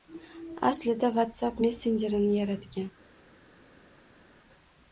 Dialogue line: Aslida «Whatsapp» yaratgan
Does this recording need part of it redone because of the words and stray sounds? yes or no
yes